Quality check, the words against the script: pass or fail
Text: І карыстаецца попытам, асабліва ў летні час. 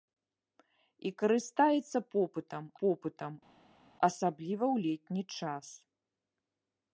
fail